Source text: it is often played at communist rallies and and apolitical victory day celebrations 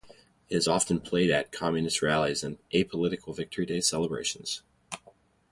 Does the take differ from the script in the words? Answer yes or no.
yes